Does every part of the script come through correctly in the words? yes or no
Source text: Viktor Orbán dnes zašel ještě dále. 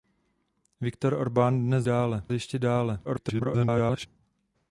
no